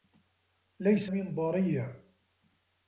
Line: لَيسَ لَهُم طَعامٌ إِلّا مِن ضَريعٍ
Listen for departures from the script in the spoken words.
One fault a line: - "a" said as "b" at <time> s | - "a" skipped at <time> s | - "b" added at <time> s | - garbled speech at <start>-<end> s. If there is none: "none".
- "لَهُم طَعامٌ إِلّا" skipped at 1.1 s